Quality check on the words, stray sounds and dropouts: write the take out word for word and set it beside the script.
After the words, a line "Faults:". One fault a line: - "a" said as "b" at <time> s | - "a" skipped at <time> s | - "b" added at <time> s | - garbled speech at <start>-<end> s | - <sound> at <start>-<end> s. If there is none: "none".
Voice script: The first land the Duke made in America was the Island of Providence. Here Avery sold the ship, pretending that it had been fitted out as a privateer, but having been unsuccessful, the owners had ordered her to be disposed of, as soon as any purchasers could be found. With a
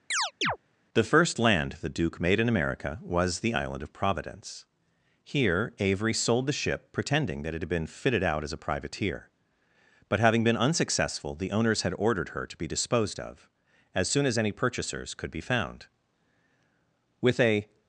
The first land the Duke made in America was the Island of Providence. Here Avery sold the ship, pretending that it had been fitted out as a privateer, but having been unsuccessful, the owners had ordered her to be disposed of, as soon as any purchasers could be found. With a
Faults:
- chirp at 0.1-0.6 s